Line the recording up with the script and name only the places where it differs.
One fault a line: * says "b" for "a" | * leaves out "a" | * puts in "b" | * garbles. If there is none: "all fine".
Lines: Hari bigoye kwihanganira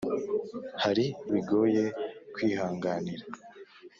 all fine